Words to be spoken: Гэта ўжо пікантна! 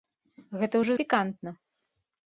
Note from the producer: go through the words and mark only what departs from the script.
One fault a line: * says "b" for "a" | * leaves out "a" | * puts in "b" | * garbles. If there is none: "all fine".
all fine